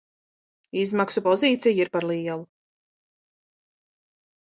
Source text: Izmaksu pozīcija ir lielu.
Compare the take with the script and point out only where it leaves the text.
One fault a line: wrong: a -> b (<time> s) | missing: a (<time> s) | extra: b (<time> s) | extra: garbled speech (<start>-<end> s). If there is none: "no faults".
extra: par (2.0 s)